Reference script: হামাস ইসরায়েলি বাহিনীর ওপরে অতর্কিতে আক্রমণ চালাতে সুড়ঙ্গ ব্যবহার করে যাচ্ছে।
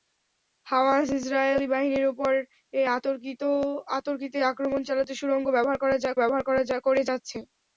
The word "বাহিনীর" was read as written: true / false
true